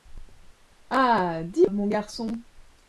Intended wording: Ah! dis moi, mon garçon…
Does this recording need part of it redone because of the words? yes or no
yes